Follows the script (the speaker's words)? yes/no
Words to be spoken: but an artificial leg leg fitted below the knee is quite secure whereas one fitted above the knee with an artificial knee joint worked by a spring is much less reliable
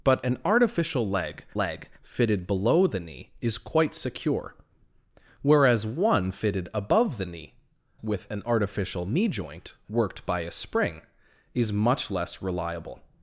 yes